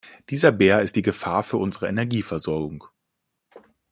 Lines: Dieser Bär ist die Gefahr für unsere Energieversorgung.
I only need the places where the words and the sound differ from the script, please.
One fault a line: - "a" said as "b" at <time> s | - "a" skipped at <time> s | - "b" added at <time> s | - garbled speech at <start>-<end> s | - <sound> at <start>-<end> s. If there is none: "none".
none